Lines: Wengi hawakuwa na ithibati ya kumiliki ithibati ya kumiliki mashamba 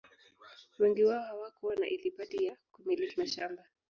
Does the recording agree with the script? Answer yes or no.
no